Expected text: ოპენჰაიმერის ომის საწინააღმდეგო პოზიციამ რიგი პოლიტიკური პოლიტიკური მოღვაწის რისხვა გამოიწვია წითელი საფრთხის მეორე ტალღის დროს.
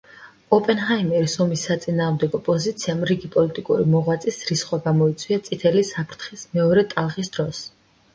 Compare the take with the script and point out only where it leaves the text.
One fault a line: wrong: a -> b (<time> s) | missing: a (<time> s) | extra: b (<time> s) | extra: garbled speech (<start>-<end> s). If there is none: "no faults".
missing: პოლიტიკური (3.9 s)